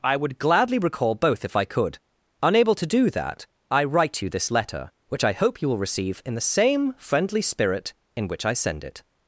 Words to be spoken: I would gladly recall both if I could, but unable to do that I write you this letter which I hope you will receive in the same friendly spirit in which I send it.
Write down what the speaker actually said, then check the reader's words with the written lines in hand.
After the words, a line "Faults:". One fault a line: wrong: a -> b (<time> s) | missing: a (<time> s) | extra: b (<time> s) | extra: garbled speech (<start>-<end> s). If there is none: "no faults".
I would gladly recall both if I could, unable to do that I write you this letter which I hope you will receive in the same friendly spirit in which I send it.
Faults:
missing: but (2.0 s)